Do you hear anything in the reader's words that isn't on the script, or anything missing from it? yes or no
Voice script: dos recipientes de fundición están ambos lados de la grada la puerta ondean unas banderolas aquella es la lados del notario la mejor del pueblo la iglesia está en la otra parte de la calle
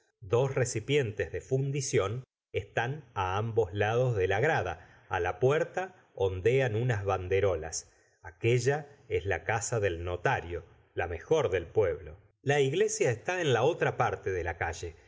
yes